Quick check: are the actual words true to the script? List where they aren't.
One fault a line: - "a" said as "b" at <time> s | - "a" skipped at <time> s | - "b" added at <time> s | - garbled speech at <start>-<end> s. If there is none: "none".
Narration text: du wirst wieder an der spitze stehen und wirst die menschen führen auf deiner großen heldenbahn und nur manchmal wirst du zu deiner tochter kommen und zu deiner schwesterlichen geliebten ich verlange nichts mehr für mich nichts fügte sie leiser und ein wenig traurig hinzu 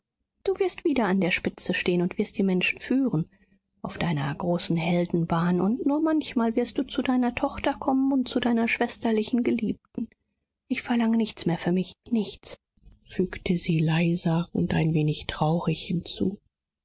none